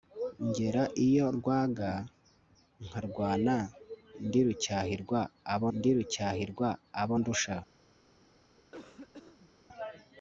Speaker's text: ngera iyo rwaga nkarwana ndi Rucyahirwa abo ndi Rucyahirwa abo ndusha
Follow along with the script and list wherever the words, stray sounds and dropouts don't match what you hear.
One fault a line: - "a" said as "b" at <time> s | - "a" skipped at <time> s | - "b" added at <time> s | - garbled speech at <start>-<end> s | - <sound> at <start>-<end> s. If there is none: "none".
- cough at 8.6-9.5 s